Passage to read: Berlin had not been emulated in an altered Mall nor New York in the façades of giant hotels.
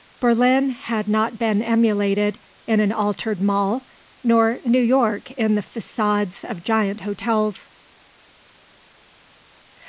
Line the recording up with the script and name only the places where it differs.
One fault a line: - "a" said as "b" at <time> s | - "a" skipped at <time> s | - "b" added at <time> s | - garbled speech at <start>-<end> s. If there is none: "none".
none